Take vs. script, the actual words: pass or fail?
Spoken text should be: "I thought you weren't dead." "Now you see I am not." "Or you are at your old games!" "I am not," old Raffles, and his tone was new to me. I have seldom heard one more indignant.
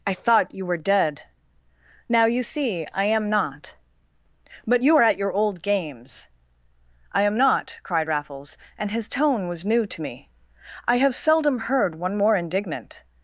fail